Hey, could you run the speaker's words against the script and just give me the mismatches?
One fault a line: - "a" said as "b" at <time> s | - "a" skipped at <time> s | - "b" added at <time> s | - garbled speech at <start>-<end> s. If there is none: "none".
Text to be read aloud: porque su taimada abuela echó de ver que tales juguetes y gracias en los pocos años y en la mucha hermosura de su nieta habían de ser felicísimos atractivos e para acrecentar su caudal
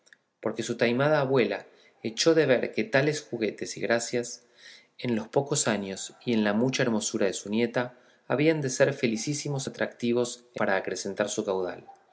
none